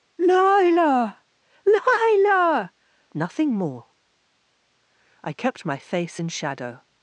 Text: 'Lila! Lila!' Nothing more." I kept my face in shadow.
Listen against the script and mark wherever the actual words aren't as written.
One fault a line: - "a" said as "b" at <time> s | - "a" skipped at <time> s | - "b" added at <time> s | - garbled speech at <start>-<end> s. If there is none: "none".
none